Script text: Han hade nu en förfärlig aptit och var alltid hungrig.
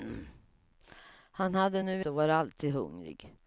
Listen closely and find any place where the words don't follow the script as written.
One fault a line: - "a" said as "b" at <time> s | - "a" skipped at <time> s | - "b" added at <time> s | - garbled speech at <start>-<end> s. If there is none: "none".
- "en förfärlig aptit" skipped at 2.1 s